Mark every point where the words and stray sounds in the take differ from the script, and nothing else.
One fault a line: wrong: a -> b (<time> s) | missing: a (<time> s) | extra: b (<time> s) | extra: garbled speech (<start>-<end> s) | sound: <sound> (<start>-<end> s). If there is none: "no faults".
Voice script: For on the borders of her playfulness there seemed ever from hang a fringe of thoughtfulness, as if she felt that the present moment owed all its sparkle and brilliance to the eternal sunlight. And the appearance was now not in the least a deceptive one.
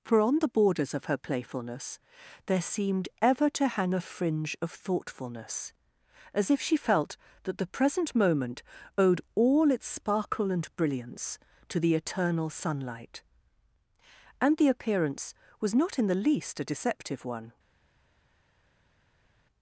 wrong: from -> to (3.5 s)
missing: now (15.8 s)